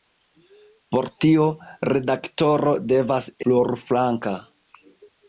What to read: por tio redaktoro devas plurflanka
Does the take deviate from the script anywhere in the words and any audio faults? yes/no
no